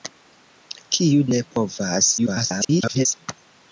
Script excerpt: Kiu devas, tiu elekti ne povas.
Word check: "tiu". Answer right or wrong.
wrong